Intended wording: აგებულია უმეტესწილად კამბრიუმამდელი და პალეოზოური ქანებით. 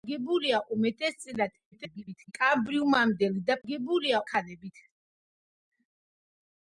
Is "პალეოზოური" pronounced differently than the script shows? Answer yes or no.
yes